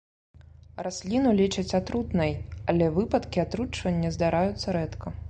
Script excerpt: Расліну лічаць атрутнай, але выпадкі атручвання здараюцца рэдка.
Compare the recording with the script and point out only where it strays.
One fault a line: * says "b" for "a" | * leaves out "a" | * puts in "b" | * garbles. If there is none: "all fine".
all fine